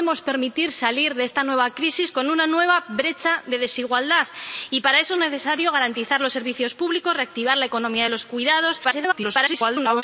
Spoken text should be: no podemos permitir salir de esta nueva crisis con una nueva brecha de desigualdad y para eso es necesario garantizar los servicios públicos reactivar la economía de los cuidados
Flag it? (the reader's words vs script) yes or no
yes